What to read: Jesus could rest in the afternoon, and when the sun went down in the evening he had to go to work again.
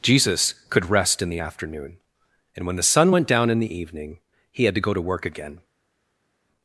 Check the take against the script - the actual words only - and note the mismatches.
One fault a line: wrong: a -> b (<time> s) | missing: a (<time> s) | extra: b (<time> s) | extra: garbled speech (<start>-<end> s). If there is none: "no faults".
no faults